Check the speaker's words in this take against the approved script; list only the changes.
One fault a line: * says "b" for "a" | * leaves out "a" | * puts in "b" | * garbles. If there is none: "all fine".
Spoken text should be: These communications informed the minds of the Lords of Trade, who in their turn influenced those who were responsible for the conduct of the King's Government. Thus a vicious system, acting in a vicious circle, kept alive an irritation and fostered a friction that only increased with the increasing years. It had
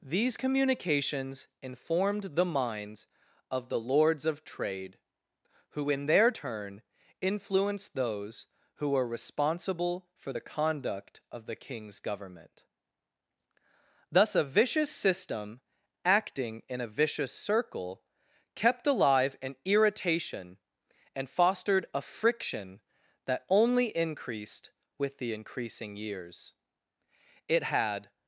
all fine